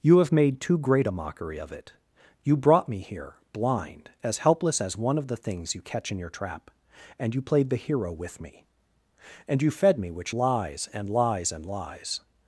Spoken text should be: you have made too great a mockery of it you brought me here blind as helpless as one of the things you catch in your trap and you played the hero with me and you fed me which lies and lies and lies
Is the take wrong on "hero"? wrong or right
right